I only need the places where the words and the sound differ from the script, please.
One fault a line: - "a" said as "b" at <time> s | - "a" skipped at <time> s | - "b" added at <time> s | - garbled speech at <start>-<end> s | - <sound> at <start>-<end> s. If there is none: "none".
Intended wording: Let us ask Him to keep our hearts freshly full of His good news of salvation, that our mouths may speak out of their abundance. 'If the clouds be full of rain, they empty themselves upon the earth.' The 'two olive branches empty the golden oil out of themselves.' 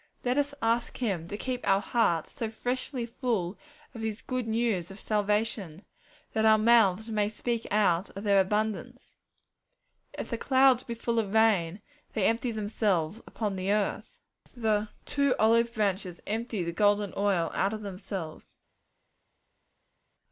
- "so" added at 2.3 s